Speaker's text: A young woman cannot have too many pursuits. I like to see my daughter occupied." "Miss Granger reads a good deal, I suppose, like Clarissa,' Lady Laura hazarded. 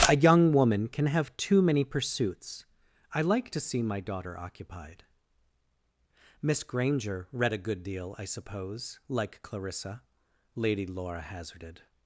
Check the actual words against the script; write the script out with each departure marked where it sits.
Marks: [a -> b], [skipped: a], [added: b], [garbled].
A young woman [cannot -> can] have too many pursuits. I like to see my daughter occupied." "Miss Granger [reads -> read] a good deal, I suppose, like Clarissa,' Lady Laura hazarded.